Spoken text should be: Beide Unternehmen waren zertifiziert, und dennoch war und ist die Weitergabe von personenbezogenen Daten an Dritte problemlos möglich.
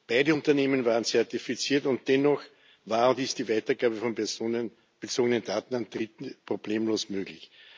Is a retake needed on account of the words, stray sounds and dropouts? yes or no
no